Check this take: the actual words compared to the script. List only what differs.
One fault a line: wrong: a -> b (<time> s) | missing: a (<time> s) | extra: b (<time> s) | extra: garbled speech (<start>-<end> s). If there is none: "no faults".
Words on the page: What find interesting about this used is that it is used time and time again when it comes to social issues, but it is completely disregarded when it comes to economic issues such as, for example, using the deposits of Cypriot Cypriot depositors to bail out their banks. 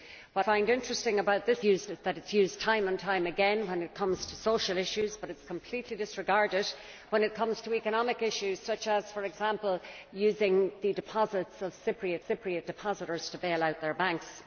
no faults